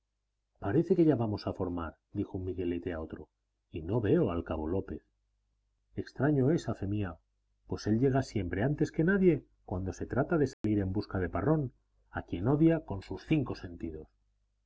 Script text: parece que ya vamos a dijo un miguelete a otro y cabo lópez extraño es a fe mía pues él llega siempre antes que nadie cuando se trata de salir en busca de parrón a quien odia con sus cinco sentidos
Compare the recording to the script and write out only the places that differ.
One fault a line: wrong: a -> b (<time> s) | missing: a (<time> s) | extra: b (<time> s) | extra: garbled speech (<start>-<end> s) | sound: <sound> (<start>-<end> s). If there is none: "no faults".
extra: formar (1.5 s)
extra: no veo al (3.8 s)
sound: dropout (10.5-10.6 s)